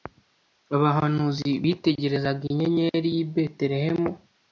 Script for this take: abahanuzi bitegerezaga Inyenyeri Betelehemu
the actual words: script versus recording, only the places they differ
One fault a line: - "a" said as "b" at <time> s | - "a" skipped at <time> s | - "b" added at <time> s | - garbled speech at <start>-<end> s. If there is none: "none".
- "y'i" added at 3.1 s